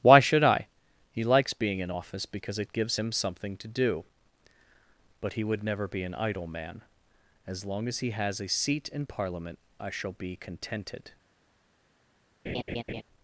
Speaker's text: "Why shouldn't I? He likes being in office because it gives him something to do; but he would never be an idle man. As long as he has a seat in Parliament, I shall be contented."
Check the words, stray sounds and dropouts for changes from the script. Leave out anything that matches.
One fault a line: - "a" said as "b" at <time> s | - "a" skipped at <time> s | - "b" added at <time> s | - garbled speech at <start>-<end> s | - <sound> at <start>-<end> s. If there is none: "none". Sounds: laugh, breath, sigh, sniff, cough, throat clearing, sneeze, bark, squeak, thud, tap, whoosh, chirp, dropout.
- "shouldn't" said as "should" at 0.2 s
- laugh at 12.5-13.0 s